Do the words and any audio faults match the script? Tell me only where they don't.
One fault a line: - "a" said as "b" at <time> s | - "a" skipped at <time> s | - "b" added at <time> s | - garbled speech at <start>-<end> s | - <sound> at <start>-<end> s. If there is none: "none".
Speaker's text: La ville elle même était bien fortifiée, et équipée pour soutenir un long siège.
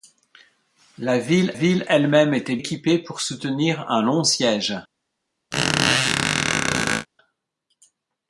- "ville" added at 1.5 s
- "bien fortifiée et" skipped at 2.6 s
- squeak at 5.5-7.1 s